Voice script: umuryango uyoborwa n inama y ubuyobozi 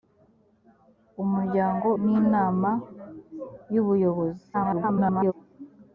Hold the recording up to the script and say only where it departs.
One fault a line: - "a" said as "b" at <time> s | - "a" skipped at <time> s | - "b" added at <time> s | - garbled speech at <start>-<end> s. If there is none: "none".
- "uyoborwa" skipped at 1.9 s
- garbled speech at 4.5-5.3 s